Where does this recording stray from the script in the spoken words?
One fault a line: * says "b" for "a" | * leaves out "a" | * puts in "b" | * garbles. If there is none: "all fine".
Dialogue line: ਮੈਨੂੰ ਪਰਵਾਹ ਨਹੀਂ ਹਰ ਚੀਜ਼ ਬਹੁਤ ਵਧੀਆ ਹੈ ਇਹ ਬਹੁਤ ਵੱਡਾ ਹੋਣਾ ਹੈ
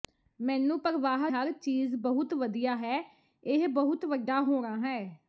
* leaves out "ਨਹੀਂ"